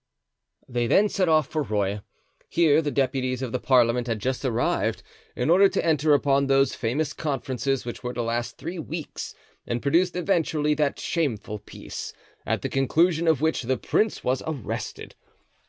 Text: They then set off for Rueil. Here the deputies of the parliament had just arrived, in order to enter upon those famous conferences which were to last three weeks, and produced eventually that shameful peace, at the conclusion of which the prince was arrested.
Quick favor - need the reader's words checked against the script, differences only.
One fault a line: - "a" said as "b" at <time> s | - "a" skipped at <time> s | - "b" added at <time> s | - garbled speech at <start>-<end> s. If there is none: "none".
none